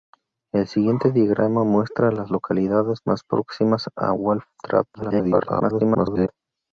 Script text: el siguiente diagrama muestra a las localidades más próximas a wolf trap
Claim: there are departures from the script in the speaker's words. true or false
true